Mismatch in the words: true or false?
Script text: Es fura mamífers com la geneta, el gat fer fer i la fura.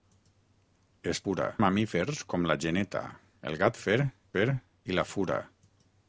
false